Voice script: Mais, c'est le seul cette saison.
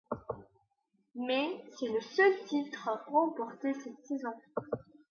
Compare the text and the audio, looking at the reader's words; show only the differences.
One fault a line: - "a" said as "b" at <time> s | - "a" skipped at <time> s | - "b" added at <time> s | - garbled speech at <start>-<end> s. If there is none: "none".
- "titre remporté" added at 2.5 s